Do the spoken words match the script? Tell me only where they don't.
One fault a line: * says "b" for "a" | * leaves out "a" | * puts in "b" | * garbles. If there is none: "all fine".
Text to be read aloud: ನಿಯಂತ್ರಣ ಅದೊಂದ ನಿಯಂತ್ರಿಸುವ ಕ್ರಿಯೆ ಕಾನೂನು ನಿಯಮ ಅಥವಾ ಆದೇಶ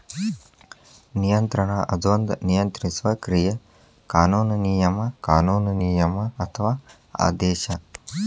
* puts in "ಕಾನೂನು ನಿಯಮ"